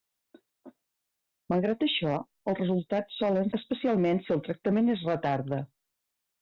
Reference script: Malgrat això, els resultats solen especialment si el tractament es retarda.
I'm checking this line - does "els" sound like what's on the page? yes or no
yes